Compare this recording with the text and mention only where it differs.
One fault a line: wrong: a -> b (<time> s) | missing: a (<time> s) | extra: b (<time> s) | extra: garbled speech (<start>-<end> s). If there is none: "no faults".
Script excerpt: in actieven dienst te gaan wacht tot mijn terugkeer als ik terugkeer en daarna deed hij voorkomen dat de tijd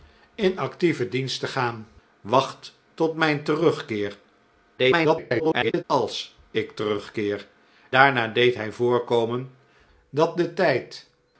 extra: garbled speech (4.8-5.8 s)
missing: en (7.5 s)